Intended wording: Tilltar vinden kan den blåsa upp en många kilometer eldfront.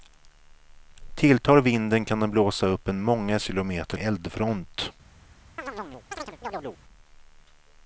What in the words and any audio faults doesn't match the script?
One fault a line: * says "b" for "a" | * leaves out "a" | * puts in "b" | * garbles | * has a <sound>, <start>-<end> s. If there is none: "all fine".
* has a chirp, 5.6-6.8 s